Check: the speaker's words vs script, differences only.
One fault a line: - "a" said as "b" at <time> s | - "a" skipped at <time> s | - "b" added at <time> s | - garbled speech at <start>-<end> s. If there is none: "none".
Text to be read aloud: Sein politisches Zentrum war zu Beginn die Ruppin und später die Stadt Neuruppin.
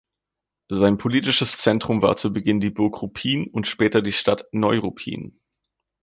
- "Burg" added at 2.7 s